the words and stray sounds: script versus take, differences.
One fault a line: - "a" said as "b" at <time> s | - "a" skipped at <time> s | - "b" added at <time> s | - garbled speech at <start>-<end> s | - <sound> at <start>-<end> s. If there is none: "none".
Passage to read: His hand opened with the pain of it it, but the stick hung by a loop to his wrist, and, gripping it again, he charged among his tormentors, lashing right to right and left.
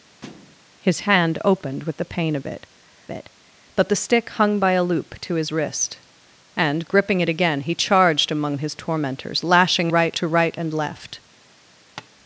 - thud at 0.2-0.6 s
- tap at 12.0-12.1 s